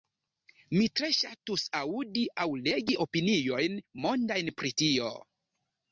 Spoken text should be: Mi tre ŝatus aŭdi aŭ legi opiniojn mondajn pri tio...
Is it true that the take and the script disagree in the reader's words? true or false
false